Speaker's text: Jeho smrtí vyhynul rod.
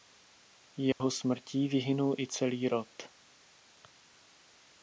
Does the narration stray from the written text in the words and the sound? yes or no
yes